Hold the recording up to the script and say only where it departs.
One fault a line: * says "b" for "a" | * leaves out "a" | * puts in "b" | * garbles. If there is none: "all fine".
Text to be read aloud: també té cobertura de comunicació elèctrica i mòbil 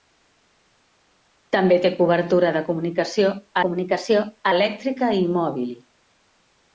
* puts in "comunicació"